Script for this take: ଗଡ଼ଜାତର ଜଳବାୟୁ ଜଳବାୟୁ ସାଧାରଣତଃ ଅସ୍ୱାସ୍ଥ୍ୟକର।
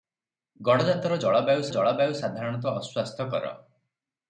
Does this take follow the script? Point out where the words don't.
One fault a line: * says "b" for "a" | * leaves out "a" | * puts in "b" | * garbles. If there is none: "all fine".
all fine